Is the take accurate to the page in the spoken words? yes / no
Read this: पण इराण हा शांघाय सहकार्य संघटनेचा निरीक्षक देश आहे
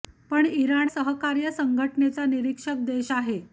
no